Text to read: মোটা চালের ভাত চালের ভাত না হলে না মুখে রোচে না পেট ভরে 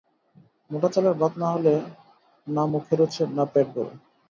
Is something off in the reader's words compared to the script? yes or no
yes